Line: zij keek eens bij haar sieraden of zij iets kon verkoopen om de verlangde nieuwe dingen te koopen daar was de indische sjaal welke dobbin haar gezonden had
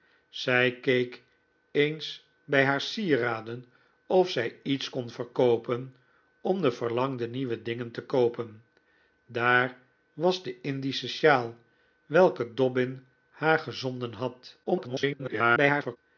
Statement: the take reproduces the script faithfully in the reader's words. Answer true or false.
false